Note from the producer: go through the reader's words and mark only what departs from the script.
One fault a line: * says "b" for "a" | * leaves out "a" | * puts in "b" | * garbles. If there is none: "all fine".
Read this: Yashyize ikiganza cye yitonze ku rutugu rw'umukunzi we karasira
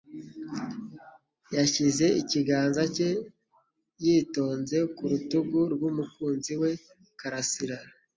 all fine